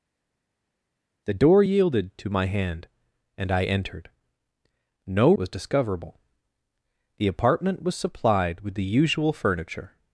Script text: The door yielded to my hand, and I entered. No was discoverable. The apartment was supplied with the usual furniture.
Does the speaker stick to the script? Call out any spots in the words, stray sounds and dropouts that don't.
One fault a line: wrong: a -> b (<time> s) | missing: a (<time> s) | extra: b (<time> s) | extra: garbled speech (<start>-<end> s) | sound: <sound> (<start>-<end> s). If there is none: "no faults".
no faults